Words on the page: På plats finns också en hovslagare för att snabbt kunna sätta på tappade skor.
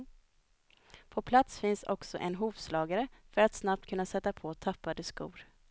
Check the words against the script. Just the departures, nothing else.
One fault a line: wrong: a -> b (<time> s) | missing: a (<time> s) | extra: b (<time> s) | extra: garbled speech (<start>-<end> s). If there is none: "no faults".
no faults